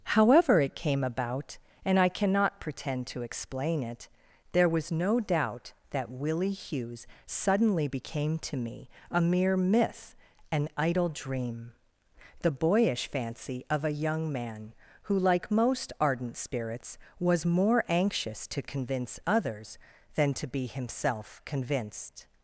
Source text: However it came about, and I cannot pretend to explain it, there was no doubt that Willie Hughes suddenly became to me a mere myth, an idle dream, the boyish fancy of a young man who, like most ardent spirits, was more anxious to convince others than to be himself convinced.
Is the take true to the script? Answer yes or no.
yes